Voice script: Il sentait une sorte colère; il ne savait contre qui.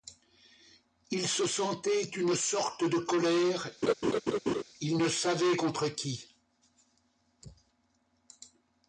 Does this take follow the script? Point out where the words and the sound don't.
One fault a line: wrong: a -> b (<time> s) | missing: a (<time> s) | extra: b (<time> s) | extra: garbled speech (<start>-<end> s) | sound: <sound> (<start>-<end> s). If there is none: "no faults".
extra: se (1.3 s)
extra: de (2.8 s)
sound: laugh (3.8-4.6 s)